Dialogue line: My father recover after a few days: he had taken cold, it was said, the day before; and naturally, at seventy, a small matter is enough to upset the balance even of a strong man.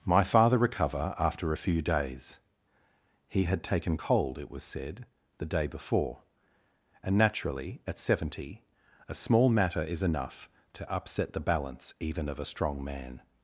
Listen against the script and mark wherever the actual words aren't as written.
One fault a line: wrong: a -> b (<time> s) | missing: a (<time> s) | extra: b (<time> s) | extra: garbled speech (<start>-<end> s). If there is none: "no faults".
no faults